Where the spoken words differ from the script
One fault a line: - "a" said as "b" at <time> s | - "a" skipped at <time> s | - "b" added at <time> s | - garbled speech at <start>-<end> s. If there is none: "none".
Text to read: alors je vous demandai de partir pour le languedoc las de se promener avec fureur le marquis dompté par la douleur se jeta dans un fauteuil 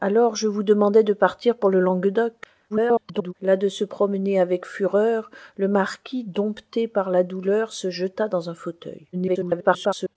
- garbled speech at 2.7-3.3 s
- garbled speech at 9.1-10.2 s